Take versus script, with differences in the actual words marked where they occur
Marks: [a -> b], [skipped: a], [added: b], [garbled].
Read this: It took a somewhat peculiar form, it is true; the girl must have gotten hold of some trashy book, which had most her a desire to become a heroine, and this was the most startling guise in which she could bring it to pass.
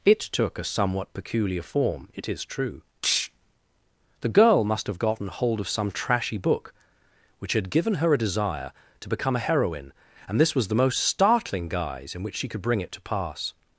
It took a somewhat peculiar form, it is true; the girl must have gotten hold of some trashy book, which had [most -> given] her a desire to become a heroine, and this was the most startling guise in which she could bring it to pass.